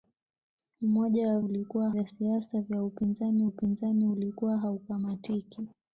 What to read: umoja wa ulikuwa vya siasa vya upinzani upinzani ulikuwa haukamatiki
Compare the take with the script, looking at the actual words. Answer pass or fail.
pass